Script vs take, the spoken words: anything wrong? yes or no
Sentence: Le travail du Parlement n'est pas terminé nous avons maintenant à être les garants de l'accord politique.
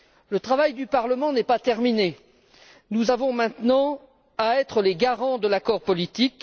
no